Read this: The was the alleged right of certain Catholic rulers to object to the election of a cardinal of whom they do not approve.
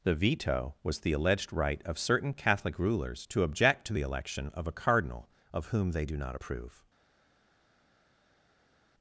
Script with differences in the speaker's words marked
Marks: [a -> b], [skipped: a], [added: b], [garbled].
The [added: veto] was the alleged right of certain Catholic rulers to object to the election of a cardinal of whom they do not approve.